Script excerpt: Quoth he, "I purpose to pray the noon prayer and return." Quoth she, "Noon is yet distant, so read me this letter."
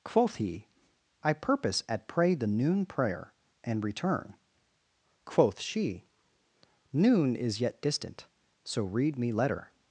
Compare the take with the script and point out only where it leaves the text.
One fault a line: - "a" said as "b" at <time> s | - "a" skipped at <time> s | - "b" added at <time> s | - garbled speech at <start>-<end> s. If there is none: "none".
- "to" said as "at" at 1.9 s
- "this" skipped at 9.3 s